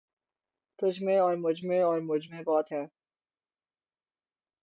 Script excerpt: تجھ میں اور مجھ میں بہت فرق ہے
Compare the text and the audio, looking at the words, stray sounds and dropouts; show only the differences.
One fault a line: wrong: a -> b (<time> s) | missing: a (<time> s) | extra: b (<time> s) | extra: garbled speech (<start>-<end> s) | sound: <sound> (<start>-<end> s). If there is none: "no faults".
extra: اور مجھ میں (1.8 s)
missing: فرق (2.7 s)